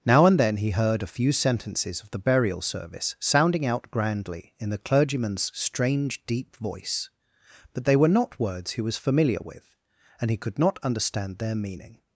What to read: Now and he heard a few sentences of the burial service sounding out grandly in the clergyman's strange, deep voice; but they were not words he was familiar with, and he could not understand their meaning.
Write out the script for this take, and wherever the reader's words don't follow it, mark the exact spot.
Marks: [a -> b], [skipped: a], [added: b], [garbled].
Now and [added: then] he heard a few sentences of the burial service sounding out grandly in the clergyman's strange, deep voice; but they were not words he was familiar with, and he could not understand their meaning.